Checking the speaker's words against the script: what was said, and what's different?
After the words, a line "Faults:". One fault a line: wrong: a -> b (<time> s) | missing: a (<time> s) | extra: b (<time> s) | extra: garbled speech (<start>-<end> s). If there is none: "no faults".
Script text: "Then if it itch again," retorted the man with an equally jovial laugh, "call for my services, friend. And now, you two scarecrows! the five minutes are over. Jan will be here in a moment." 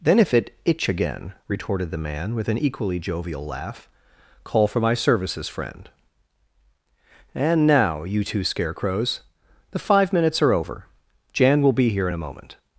"Then if it itch again," retorted the man with an equally jovial laugh, "call for my services, friend. And now, you two scarecrows! the five minutes are over. Jan will be here in a moment."
Faults:
no faults